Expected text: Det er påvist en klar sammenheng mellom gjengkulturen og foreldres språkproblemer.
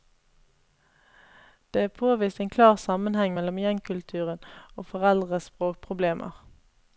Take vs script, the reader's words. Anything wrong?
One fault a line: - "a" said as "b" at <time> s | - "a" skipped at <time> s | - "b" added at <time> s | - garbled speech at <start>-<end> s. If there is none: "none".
none